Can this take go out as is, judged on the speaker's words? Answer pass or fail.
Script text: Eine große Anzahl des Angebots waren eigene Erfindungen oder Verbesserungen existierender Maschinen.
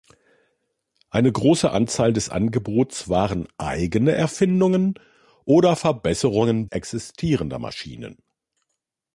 pass